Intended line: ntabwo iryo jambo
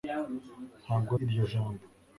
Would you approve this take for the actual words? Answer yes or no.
yes